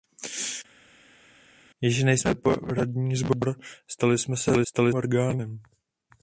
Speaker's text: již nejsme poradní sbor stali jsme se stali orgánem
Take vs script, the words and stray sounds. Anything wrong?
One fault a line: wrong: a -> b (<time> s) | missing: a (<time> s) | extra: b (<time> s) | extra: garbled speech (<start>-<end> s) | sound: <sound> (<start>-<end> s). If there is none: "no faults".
no faults